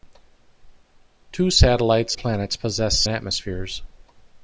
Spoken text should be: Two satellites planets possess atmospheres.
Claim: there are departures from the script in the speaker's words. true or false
false